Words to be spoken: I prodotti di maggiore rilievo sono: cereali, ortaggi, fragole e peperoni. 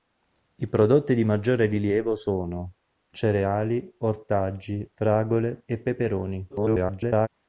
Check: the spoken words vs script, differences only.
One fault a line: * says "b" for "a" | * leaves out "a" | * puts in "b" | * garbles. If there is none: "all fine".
* garbles